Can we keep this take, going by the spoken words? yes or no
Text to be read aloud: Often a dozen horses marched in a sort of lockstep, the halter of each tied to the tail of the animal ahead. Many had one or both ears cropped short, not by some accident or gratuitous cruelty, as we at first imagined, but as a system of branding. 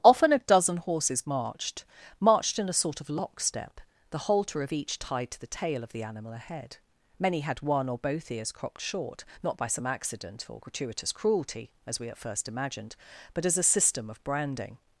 no